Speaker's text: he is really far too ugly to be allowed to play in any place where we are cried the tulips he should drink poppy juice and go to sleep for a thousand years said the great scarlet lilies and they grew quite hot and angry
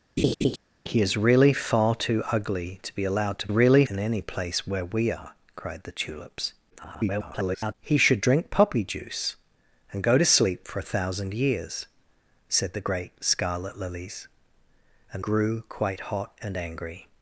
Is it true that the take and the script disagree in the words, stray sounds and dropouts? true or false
true